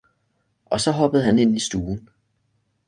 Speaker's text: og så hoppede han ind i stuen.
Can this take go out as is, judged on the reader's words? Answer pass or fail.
pass